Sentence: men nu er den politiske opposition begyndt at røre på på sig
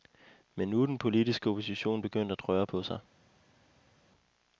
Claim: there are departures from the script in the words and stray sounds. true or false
true